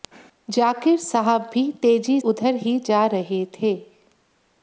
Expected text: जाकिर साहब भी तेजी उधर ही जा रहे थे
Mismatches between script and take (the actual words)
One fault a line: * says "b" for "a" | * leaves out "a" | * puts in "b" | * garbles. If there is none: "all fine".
all fine